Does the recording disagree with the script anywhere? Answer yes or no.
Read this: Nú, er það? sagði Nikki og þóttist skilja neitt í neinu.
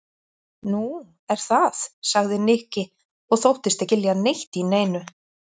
no